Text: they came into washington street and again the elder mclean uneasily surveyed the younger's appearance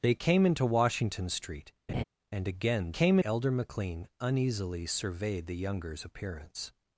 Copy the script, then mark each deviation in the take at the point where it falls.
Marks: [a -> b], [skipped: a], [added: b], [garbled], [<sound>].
they came into washington street [laugh] and again [the -> came] elder mclean uneasily surveyed the younger's appearance